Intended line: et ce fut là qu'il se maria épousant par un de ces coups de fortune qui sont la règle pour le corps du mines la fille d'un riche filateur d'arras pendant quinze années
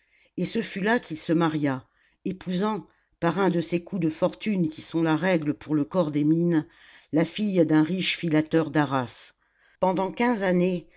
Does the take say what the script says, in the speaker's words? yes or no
no